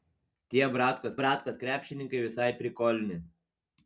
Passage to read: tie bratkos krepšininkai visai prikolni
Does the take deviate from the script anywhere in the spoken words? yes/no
yes